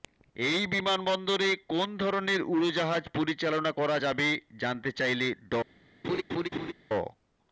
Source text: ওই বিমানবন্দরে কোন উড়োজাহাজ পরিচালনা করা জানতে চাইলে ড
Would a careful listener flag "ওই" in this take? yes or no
yes